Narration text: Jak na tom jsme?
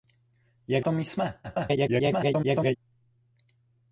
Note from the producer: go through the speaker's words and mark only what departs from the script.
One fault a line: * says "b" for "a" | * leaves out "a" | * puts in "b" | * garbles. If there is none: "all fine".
* leaves out "na"
* garbles